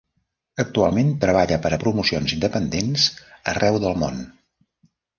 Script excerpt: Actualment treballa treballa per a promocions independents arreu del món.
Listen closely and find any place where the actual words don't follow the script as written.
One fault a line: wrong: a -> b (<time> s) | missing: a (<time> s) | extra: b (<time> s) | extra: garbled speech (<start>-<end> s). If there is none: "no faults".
missing: treballa (1.6 s)